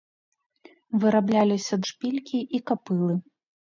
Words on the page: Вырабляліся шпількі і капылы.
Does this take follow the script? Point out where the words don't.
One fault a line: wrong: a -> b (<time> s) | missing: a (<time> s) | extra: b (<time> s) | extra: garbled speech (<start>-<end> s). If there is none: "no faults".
no faults